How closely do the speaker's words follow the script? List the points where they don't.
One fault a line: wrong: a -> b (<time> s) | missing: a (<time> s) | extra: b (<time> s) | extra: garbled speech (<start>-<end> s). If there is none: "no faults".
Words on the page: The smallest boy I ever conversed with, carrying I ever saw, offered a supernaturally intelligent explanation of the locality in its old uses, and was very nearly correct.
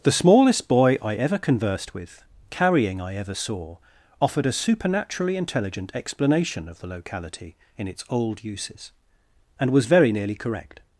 no faults